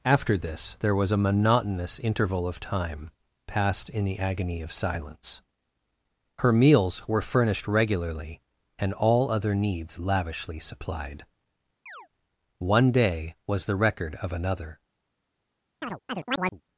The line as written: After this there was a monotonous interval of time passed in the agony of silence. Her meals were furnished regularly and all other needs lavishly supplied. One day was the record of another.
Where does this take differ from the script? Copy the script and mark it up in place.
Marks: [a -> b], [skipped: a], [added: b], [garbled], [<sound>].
After this there was a monotonous interval of time passed in the agony of silence. Her meals were furnished regularly and all other needs lavishly supplied. [chirp] One day was the record of another. [chirp]